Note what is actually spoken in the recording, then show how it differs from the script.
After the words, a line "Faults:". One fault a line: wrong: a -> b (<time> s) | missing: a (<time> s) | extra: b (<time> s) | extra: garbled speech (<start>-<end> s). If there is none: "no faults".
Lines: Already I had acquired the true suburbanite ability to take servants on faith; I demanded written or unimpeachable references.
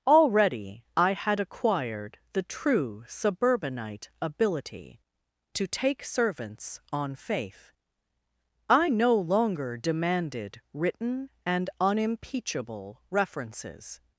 Already I had acquired the true suburbanite ability to take servants on faith; I no longer demanded written and unimpeachable references.
Faults:
extra: no longer (8.9 s)
wrong: or -> and (11.4 s)